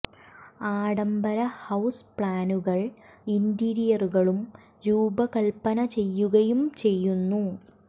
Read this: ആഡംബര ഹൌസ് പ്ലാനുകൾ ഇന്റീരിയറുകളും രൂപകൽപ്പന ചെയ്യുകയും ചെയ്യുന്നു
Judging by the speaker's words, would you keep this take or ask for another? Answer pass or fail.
pass